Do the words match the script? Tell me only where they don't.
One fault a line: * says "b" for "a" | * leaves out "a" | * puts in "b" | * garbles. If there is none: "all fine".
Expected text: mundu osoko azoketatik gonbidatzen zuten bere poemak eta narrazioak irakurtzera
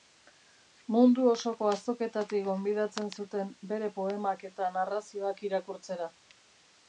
all fine